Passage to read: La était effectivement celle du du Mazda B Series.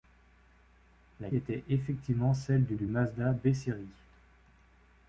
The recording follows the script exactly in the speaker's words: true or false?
true